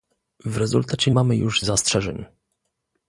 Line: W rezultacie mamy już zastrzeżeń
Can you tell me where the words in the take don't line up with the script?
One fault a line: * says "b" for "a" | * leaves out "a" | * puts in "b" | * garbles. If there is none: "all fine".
all fine